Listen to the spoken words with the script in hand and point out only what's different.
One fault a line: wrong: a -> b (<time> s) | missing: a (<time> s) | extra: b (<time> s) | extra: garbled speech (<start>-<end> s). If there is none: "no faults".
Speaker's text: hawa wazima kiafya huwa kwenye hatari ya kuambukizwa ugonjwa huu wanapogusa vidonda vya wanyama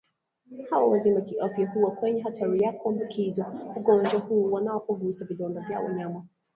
no faults